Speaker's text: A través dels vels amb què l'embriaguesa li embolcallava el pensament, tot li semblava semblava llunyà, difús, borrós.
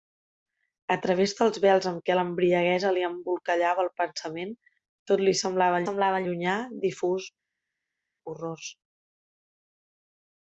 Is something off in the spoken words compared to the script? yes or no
no